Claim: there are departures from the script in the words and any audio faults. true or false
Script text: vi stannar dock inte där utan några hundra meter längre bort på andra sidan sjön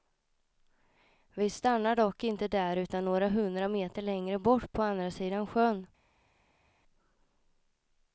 false